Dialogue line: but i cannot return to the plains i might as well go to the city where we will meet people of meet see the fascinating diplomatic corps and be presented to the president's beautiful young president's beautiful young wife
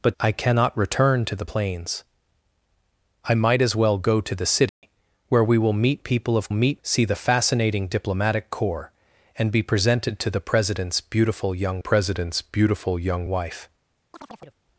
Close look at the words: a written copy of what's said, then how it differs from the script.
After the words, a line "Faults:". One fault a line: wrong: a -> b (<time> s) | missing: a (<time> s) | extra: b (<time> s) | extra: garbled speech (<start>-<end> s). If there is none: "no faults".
but i cannot return to the plains i might as well go to the city where we will meet people of meet see the fascinating diplomatic corps and be presented to the president's beautiful young president's beautiful young wife
Faults:
no faults